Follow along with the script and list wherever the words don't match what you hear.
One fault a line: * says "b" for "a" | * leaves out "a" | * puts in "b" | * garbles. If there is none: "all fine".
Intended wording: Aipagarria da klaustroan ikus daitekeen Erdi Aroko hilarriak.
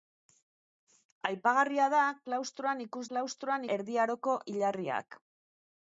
* says "klaustroan" for "daitekeen"